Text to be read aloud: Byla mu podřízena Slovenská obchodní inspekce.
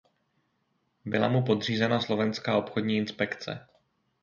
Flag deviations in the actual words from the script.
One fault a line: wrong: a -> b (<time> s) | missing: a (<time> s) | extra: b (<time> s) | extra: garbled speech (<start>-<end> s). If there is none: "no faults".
no faults